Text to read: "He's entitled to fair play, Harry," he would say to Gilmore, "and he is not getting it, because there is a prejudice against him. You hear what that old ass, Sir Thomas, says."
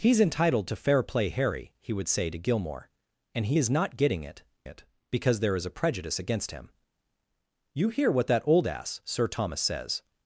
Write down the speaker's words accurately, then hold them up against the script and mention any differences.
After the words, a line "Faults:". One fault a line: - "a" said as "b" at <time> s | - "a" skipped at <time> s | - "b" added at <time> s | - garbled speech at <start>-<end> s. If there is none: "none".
"He's entitled to fair play, Harry," he would say to Gilmore, "and he is not getting it it, because there is a prejudice against him. You hear what that old ass, Sir Thomas, says."
Faults:
- "it" added at 4.6 s